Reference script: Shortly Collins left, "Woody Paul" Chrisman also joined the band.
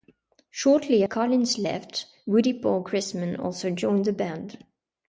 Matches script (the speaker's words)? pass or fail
pass